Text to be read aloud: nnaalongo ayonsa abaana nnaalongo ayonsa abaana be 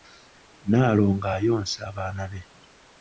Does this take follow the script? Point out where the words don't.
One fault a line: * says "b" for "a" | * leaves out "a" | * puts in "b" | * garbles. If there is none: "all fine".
* leaves out "nnaalongo ayonsa abaana"